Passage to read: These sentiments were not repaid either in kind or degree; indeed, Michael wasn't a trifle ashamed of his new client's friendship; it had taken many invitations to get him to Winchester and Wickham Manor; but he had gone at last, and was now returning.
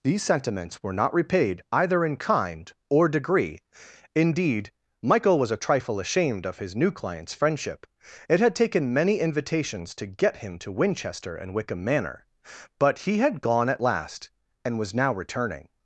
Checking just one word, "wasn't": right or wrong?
wrong